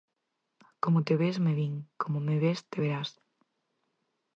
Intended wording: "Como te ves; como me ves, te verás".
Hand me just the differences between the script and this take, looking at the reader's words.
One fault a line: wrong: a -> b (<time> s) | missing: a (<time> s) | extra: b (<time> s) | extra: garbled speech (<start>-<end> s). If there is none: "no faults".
extra: me vin (1.4 s)